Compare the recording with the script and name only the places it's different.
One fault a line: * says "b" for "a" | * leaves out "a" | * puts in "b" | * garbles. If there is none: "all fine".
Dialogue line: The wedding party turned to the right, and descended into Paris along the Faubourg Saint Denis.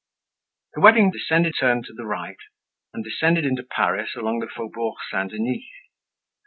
* says "descended" for "party"